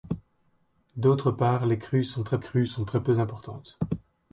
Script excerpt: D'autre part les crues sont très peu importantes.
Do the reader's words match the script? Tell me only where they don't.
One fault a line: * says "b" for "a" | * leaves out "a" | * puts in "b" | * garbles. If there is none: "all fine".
* puts in "crues sont très"